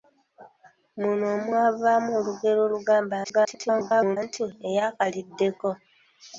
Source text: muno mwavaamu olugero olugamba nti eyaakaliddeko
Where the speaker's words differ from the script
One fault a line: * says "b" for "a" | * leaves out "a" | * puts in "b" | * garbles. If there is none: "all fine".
* garbles